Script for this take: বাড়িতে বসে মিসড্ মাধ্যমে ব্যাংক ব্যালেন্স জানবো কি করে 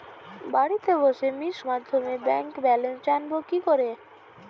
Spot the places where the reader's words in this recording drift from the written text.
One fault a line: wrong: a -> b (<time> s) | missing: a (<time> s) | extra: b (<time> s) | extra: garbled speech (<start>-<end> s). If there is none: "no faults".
no faults